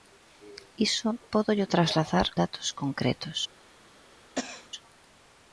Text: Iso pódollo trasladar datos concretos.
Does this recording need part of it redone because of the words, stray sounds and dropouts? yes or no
yes